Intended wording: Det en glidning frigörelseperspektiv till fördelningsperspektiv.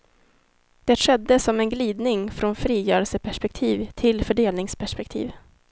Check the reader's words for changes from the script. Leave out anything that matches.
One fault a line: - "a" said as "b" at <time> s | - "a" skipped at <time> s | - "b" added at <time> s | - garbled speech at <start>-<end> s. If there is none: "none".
- "skedde som" added at 0.9 s
- "från" added at 2.3 s